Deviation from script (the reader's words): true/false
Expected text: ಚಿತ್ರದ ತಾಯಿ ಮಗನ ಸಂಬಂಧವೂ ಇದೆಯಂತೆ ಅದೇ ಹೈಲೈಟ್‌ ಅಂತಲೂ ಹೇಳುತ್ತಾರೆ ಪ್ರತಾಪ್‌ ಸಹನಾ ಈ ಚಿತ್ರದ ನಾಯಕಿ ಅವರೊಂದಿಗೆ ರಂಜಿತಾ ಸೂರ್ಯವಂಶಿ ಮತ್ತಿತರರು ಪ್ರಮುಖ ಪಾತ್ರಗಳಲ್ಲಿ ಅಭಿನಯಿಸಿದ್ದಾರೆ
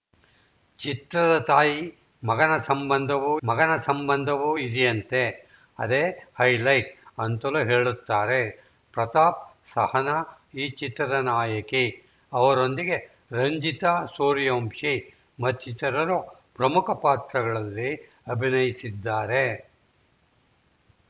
true